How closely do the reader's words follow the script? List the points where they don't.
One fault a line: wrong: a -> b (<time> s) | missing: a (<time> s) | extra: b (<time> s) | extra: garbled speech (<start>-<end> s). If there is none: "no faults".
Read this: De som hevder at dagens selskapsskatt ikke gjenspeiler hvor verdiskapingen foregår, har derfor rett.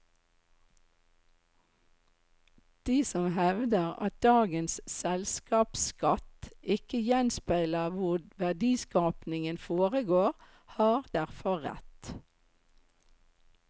no faults